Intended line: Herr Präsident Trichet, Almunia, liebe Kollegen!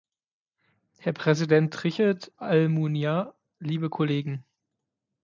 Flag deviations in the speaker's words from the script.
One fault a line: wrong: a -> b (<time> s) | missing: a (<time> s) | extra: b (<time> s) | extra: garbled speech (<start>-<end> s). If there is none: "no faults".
no faults